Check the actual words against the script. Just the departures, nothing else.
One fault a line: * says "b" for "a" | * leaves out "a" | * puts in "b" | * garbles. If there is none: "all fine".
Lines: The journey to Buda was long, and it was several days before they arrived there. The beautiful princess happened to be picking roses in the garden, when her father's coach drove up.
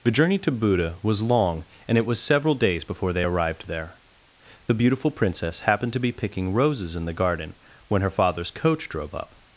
all fine